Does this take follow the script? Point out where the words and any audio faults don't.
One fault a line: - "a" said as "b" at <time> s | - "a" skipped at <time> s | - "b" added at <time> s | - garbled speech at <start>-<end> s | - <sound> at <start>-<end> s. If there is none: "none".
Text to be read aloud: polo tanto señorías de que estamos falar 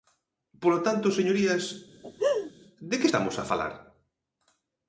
- laugh at 2.0-2.5 s
- "a" added at 3.4 s